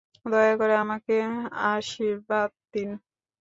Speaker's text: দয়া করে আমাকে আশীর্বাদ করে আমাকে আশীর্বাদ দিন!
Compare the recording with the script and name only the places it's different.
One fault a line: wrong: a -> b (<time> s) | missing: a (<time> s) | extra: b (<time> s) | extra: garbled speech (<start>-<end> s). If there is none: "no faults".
missing: করে আমাকে আশীর্বাদ (2.5 s)